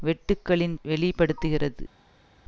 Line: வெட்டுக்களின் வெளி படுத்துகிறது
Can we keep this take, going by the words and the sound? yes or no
yes